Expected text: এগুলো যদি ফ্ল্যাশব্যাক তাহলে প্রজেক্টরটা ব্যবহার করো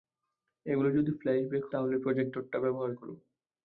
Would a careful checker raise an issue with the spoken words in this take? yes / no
no